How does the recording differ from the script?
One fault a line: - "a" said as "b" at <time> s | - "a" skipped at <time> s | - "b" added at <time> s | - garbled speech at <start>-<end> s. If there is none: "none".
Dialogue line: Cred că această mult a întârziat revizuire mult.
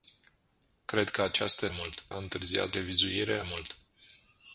none